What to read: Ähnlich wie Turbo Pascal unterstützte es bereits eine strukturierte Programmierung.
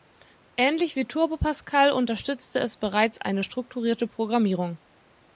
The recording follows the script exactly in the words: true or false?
true